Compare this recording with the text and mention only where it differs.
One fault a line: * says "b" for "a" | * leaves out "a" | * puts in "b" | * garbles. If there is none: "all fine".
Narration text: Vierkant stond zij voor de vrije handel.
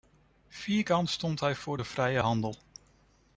* says "hij" for "zij"